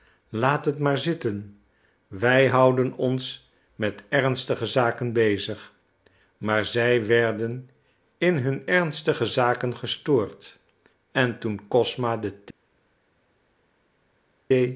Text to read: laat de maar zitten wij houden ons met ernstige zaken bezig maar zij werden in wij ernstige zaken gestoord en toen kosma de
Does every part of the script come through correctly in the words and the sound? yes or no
no